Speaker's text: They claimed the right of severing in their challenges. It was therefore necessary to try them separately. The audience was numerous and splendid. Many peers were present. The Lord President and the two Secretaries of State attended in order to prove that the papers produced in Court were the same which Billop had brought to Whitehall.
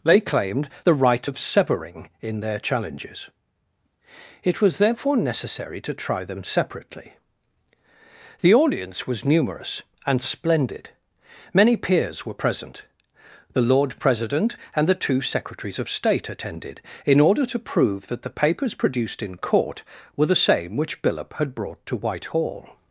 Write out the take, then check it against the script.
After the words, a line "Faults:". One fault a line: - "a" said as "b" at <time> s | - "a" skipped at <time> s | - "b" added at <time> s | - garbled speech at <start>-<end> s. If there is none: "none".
They claimed the right of severing in their challenges. It was therefore necessary to try them separately. The audience was numerous and splendid. Many peers were present. The Lord President and the two Secretaries of State attended in order to prove that the papers produced in Court were the same which Billop had brought to Whitehall.
Faults:
none